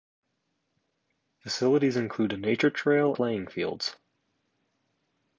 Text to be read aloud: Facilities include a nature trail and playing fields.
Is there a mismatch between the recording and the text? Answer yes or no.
yes